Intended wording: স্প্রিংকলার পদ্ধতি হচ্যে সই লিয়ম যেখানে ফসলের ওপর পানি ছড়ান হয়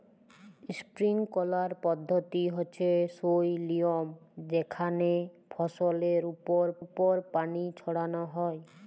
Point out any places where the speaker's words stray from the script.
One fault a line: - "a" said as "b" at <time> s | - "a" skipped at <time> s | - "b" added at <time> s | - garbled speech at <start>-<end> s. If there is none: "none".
- "ওপর" added at 6.8 s